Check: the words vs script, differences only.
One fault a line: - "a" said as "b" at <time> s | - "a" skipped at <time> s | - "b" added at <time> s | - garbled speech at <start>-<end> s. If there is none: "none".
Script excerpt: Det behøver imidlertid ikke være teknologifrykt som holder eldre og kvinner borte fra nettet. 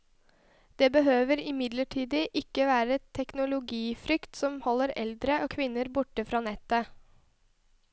none